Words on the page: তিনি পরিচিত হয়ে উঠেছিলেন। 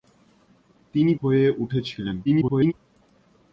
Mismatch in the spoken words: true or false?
true